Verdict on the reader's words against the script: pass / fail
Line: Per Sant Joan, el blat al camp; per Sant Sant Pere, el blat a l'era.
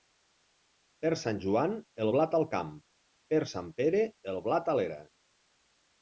fail